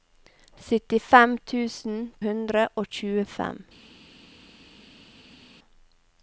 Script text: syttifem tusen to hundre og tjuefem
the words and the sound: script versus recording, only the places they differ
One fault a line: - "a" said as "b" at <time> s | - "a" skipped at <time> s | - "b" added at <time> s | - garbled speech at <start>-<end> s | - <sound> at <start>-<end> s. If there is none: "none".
- "to" skipped at 2.0 s